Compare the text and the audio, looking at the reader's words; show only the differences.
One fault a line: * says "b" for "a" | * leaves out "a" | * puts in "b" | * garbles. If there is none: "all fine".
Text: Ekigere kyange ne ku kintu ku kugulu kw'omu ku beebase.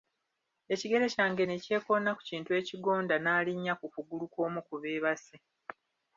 * puts in "kyekoona"
* puts in "ekigonda n'alinnya"